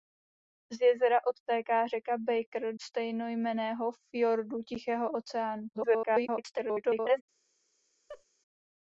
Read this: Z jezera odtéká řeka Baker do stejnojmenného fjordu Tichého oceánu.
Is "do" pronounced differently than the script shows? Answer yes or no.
yes